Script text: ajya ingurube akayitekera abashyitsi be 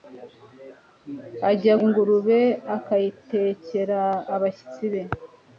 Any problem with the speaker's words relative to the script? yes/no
no